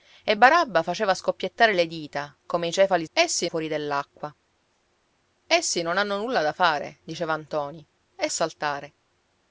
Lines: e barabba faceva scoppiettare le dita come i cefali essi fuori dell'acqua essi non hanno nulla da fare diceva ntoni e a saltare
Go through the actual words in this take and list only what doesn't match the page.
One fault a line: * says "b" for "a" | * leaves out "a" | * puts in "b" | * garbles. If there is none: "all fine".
all fine